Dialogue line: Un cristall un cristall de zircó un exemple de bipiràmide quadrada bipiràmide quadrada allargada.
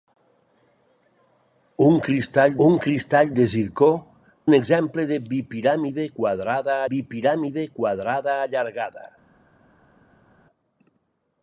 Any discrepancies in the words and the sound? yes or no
no